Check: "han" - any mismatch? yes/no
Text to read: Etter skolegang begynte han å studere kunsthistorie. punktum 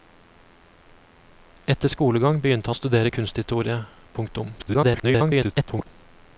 yes